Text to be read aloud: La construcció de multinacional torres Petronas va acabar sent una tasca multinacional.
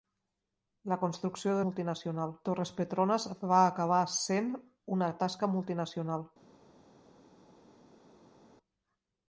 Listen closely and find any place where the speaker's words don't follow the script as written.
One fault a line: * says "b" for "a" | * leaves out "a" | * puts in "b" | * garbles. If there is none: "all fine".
all fine